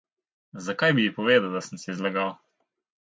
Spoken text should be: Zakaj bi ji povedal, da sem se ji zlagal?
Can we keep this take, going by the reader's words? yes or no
yes